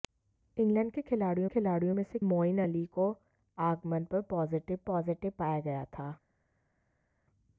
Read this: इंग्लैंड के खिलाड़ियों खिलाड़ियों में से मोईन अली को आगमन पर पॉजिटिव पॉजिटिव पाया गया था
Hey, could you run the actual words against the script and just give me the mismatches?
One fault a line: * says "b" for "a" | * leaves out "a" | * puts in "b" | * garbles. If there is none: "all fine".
all fine